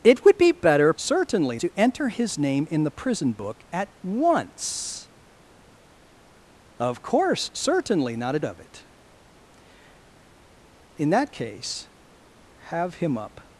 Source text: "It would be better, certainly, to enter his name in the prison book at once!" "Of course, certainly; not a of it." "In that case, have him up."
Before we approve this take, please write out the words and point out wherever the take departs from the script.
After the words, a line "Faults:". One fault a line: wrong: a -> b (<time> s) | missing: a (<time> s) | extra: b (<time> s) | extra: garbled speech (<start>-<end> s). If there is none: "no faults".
"It would be better, certainly, to enter his name in the prison book at once!" "Of course, certainly; not a of it." "In that case, have him up."
Faults:
no faults